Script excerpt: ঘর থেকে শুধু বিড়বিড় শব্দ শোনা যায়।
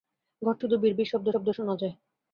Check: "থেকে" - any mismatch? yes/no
yes